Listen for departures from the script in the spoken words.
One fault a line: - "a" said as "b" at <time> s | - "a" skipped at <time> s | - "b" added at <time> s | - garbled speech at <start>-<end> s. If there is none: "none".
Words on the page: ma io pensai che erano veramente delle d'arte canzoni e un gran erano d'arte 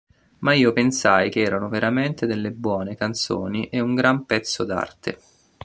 - "d'arte" said as "buone" at 2.5 s
- "erano" said as "pezzo" at 4.2 s